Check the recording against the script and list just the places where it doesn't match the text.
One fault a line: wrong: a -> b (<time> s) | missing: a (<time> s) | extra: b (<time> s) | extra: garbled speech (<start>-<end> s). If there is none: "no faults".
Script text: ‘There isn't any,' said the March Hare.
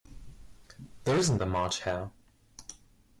missing: any said (1.4 s)